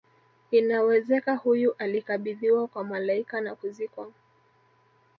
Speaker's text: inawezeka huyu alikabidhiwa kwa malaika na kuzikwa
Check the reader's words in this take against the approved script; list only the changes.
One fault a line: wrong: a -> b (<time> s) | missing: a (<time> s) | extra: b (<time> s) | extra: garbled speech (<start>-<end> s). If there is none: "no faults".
no faults